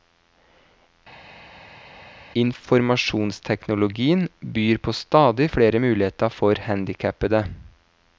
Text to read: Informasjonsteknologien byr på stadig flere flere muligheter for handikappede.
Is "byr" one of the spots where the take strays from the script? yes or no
no